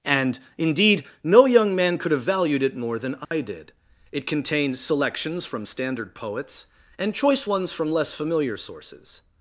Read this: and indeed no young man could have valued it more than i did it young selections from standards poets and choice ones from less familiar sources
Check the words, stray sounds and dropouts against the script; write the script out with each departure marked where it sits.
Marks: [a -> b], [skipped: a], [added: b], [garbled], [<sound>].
and indeed no young man could have valued it more than i [dropout] did it [young -> contained] selections from [standards -> standard] poets and choice ones from less familiar sources